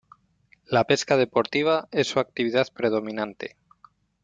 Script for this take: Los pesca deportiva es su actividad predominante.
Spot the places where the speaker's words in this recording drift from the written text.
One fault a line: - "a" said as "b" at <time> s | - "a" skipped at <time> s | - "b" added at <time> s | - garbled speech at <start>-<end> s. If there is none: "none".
- "Los" said as "La" at 0.7 s